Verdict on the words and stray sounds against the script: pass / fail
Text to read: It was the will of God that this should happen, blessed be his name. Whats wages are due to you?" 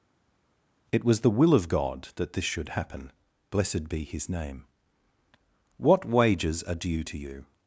fail